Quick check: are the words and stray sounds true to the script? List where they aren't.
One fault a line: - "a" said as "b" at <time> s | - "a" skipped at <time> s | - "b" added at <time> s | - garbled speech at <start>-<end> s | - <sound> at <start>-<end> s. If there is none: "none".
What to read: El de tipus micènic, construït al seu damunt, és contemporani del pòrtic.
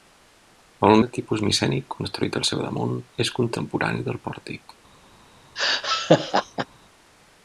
- laugh at 5.6-6.7 s